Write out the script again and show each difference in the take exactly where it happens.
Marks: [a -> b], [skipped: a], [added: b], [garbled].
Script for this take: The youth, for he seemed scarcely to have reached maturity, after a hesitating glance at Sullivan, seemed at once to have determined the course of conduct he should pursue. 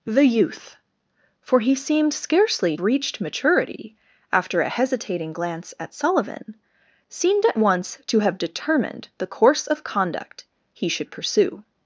The youth, for he seemed scarcely [skipped: to have] reached maturity, after a hesitating glance at Sullivan, seemed at once to have determined the course of conduct he should pursue.